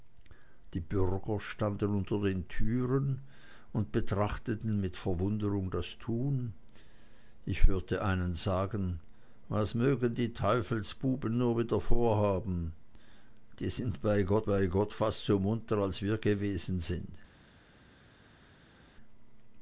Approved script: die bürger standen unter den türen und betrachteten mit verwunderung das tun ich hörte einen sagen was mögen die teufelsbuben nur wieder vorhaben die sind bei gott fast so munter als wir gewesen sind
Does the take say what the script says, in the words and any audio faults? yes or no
no